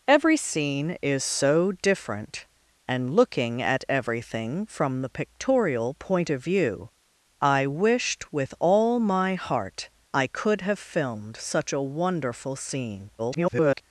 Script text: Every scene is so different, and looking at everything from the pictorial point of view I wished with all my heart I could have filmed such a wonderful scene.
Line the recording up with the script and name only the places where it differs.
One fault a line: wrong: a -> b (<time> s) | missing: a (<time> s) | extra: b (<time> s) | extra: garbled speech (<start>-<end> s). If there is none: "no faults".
extra: garbled speech (13.2-13.8 s)